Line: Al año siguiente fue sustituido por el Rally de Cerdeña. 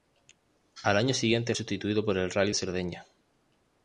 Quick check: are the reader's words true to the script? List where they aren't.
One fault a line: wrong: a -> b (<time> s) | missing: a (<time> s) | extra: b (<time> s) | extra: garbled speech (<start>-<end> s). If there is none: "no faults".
missing: fue (1.5 s)
missing: de (2.5 s)